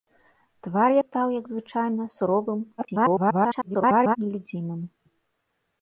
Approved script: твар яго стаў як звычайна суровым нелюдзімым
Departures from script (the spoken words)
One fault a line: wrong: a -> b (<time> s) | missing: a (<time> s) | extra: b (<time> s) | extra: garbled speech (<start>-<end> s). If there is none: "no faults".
missing: яго (0.9 s)
extra: garbled speech (2.8-4.2 s)